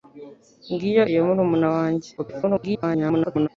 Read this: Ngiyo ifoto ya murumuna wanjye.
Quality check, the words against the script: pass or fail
fail